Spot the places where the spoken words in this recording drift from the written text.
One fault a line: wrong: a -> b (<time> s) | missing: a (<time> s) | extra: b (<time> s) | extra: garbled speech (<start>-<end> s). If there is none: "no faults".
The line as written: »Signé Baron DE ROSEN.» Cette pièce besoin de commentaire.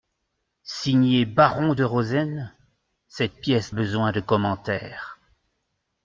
no faults